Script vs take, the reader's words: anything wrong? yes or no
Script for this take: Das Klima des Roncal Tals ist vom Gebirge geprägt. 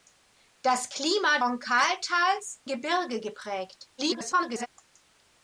yes